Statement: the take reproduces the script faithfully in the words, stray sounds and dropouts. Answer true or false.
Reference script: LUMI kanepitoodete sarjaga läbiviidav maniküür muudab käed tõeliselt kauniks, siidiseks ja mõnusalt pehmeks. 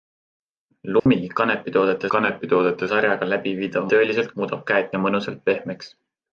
false